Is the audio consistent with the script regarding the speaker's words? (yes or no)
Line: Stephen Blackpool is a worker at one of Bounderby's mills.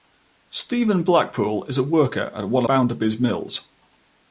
no